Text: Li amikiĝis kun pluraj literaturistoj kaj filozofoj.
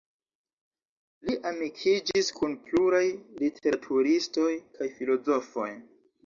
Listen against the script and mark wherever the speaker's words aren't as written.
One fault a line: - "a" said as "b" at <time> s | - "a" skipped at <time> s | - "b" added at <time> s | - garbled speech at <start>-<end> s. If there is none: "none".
none